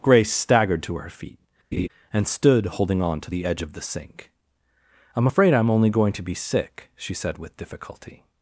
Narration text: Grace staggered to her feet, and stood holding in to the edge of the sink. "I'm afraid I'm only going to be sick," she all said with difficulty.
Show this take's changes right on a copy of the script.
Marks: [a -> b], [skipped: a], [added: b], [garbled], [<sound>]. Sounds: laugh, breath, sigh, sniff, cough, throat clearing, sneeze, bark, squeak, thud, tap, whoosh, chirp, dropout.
Grace staggered to her feet, [laugh] and stood holding [in -> on] to the edge of the sink. "I'm afraid I'm only going to be sick," she [skipped: all] said with difficulty.